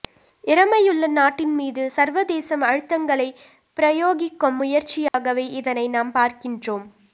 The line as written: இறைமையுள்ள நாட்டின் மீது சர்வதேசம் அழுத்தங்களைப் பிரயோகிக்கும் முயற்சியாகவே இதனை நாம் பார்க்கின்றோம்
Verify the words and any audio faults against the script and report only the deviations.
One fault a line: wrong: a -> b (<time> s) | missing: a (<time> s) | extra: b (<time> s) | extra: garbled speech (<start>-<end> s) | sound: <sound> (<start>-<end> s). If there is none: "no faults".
sound: dropout (5.1-5.1 s)